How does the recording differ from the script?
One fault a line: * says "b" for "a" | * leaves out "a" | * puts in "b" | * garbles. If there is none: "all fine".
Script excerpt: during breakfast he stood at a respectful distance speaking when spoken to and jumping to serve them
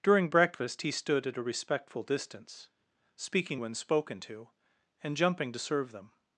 all fine